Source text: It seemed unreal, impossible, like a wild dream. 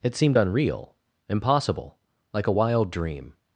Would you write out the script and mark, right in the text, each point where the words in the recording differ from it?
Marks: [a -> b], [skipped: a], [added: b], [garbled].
It seemed unreal, impossible, like a wild dream.